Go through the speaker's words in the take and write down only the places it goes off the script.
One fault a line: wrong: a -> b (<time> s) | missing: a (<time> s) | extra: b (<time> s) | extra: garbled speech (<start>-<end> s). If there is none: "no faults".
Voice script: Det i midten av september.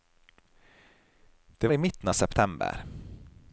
no faults